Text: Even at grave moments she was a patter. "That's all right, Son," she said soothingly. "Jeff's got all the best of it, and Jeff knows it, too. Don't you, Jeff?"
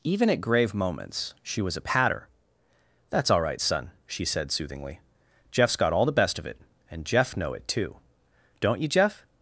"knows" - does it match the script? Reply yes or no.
no